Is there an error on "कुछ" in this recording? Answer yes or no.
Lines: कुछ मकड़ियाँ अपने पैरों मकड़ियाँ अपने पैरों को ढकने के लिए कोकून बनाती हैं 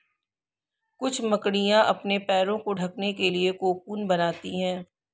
no